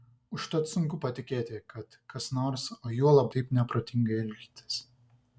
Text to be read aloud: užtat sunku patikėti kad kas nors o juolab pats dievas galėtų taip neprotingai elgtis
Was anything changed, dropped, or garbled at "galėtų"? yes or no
yes